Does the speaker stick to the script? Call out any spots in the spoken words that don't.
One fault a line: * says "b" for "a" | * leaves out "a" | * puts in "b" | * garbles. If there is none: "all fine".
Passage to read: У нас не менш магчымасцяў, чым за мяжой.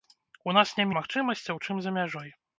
* leaves out "менш"